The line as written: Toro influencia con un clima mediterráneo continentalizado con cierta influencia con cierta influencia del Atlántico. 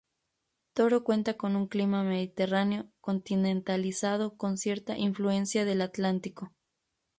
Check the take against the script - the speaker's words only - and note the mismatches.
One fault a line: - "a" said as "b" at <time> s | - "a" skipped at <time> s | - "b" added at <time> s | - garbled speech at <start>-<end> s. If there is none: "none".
- "influencia" said as "cuenta" at 1.0 s
- "con cierta influencia" skipped at 5.7 s